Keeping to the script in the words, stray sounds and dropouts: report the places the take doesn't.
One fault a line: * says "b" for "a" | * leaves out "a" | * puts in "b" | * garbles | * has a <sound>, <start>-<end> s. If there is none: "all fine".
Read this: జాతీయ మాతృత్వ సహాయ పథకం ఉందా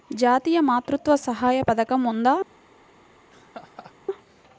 * has a laugh, 3.3-3.9 s